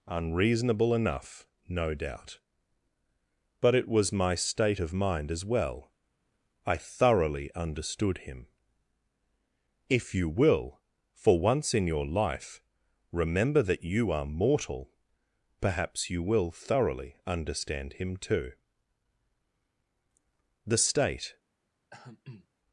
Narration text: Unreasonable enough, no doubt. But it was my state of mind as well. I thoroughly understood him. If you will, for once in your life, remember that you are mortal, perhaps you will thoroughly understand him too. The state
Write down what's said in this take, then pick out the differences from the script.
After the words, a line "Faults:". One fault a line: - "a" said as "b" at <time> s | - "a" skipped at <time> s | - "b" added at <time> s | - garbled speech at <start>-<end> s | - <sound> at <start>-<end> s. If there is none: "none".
Unreasonable enough, no doubt. But it was my state of mind as well. I thoroughly understood him. If you will, for once in your life, remember that you are mortal, perhaps you will thoroughly understand him too. The state
Faults:
- throat clearing at 21.9-22.5 s